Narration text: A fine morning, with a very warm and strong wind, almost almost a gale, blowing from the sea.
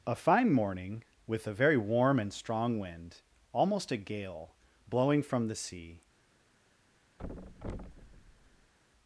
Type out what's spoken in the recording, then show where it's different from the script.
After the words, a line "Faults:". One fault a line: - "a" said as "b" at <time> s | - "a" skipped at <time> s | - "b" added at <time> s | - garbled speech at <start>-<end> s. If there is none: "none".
A fine morning, with a very warm and strong wind, almost a gale, blowing from the sea.
Faults:
- "almost" skipped at 3.9 s